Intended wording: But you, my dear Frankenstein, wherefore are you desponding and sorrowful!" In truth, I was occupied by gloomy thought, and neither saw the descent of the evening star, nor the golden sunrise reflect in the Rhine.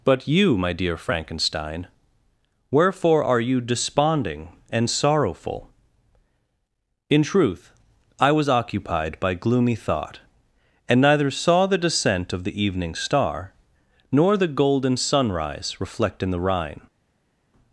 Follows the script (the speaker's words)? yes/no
yes